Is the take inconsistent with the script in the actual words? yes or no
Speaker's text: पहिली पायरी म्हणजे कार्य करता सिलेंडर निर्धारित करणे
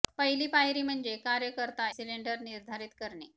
no